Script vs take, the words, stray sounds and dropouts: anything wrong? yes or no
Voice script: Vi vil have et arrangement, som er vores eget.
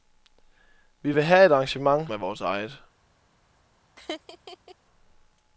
yes